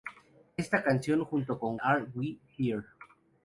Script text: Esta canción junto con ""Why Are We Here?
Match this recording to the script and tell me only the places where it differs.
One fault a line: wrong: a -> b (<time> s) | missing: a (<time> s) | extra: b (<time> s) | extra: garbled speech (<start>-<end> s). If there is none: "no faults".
missing: Why (1.8 s)